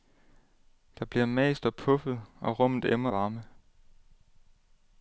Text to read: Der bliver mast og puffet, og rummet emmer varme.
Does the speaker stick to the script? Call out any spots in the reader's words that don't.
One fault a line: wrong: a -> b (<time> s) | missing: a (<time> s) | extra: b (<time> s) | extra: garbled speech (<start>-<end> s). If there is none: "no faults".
no faults